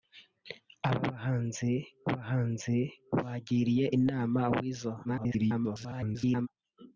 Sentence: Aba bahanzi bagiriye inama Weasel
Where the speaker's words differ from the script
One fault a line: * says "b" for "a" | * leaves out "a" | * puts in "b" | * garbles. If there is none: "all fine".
* puts in "bahanzi"
* garbles